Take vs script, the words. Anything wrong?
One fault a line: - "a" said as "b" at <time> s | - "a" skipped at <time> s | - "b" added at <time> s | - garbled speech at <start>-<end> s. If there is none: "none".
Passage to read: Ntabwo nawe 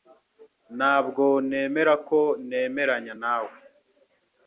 - "nemera ko nemeranya" added at 1.5 s